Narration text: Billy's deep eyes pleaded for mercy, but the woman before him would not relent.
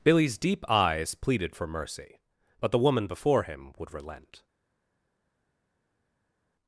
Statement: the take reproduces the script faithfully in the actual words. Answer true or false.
false